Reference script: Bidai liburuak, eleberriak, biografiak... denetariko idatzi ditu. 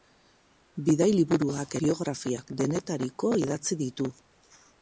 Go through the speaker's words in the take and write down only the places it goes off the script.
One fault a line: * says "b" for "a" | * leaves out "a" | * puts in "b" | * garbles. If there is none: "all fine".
* leaves out "eleberriak"